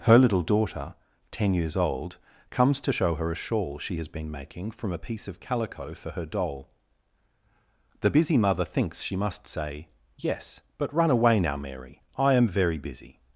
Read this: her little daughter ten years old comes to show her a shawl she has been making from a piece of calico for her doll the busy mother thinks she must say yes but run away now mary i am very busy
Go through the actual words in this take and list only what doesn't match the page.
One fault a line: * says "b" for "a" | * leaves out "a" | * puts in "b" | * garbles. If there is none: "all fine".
all fine